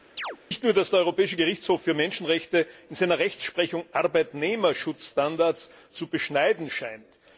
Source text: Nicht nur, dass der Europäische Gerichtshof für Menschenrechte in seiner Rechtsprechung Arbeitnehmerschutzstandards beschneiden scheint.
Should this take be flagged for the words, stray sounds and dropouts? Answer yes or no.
yes